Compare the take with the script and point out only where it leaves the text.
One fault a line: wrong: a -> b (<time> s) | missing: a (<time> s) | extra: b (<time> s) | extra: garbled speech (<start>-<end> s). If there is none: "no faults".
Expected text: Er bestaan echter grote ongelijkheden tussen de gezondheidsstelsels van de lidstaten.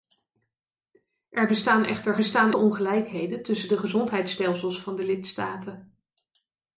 wrong: grote -> bestaan (2.2 s)